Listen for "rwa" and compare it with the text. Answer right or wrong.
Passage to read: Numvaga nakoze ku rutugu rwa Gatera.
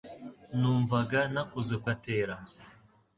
wrong